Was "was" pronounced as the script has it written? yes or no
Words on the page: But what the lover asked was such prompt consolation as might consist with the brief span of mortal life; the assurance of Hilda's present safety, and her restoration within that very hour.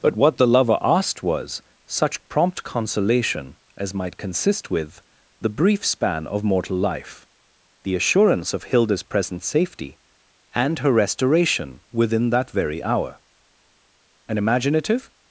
yes